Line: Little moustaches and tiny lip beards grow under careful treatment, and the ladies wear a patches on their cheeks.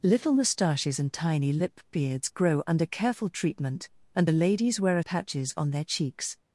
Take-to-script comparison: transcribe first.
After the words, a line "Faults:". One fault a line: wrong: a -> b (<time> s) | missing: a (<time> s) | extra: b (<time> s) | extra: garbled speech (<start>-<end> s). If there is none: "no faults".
Little moustaches and tiny lip beards grow under careful treatment, and the ladies wear a patches on their cheeks.
Faults:
no faults